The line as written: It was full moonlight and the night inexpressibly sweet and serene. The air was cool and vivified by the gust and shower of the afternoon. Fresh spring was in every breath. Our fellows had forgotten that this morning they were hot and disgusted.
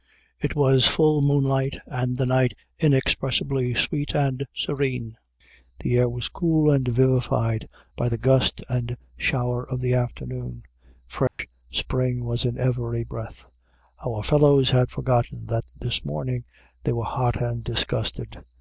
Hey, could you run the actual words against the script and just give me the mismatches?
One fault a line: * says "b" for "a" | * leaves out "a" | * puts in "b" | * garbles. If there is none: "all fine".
all fine